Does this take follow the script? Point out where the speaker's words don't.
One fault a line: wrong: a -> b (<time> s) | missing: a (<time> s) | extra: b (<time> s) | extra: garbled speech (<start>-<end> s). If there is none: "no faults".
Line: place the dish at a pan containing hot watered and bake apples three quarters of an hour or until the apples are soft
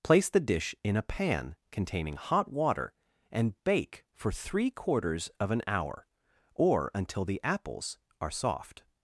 wrong: at -> in (0.8 s)
wrong: watered -> water (2.5 s)
wrong: apples -> for (4.1 s)